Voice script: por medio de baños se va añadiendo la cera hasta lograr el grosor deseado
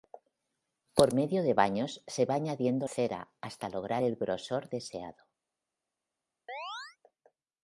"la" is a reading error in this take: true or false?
true